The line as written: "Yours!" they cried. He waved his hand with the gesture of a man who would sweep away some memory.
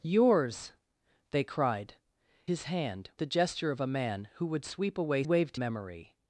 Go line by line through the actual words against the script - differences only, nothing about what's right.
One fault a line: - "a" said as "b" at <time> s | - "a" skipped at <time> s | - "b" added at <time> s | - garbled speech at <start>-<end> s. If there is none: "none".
- "He waved" skipped at 1.9 s
- "with" skipped at 3.1 s
- "some" said as "waved" at 5.2 s